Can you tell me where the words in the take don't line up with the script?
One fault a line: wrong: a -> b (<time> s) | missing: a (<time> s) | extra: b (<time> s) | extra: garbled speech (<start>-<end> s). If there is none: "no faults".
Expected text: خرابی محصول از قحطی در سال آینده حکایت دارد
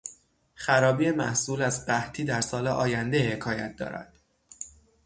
no faults